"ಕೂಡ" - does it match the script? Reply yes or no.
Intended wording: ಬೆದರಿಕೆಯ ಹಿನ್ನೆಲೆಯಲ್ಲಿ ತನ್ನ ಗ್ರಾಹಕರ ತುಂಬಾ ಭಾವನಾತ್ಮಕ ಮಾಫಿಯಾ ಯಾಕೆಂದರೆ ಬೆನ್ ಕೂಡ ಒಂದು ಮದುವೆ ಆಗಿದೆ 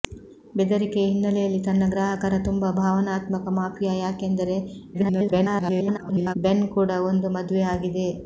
yes